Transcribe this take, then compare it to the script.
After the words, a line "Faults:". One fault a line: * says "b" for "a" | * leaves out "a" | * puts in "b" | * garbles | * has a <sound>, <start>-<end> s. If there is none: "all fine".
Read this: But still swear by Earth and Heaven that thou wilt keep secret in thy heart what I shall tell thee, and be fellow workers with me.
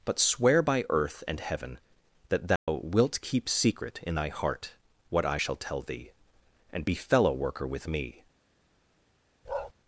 But swear by Earth and Heaven that thou wilt keep secret in thy heart what I shall tell thee, and be fellow worker with me.
Faults:
* leaves out "still"
* has a dropout, 2.6-2.7 s
* says "worker" for "workers"
* has a bark, 9.4-9.7 s